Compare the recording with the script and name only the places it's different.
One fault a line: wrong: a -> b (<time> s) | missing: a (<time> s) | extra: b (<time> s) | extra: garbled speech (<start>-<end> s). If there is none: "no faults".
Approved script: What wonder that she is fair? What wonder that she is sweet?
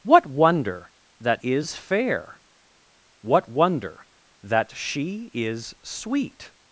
missing: she (1.4 s)